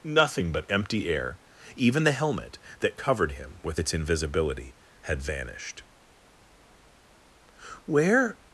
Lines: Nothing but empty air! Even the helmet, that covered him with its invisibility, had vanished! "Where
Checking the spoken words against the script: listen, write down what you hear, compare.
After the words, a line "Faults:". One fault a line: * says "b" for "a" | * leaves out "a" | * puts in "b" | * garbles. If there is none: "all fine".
Nothing but empty air! Even the helmet, that covered him with its invisibility, had vanished! "Where
Faults:
all fine